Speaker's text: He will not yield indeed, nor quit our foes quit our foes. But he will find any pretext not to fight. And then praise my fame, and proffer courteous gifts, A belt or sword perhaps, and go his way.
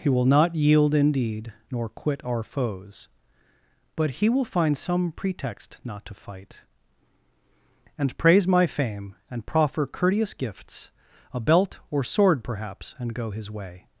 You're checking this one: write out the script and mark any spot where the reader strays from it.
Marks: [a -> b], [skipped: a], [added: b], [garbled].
He will not yield indeed, nor quit our foes [skipped: quit our foes.] But he will find [any -> some] pretext not to fight. And [skipped: then] praise my fame, and proffer courteous gifts, A belt or sword perhaps, and go his way.